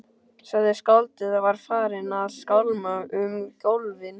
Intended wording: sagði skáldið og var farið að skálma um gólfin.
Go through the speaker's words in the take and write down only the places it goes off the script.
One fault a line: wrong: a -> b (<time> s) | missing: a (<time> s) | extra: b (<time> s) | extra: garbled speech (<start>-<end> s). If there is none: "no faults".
no faults